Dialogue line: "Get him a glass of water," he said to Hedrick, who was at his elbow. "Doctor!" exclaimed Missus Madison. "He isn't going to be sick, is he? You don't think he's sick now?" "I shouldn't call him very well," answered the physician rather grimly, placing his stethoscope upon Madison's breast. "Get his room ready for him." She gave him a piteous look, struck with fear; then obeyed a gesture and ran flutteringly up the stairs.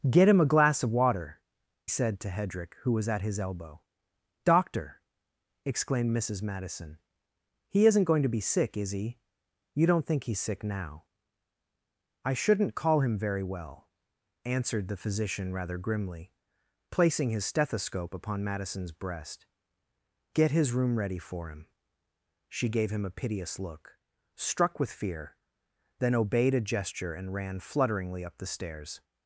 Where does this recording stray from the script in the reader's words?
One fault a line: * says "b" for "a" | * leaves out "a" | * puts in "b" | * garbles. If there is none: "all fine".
* leaves out "he"